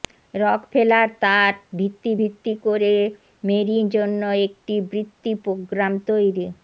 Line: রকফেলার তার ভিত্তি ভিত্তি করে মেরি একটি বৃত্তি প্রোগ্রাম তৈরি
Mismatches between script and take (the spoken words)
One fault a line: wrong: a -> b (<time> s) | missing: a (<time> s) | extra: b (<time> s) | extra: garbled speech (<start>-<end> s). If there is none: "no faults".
extra: জন্য (3.9 s)